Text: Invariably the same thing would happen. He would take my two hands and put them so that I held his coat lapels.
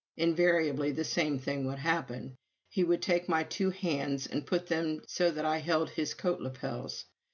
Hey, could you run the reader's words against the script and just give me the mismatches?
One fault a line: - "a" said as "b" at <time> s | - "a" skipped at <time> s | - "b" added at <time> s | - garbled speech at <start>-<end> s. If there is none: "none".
none